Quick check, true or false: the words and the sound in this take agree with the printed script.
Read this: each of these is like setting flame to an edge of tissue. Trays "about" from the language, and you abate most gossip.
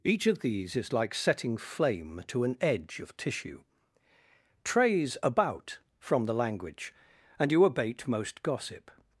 true